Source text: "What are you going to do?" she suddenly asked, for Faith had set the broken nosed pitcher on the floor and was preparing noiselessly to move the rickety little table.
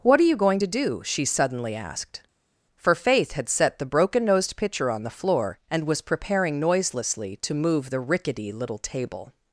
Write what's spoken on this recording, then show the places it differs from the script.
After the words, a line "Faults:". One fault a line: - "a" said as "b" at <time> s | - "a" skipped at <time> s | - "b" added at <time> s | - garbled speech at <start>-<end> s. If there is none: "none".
"What are you going to do?" she suddenly asked, for Faith had set the broken nosed pitcher on the floor and was preparing noiselessly to move the rickety little table.
Faults:
none